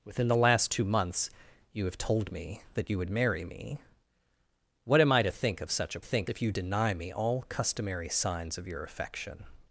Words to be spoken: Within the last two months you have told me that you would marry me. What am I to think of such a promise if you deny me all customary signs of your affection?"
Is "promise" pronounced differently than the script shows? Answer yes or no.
yes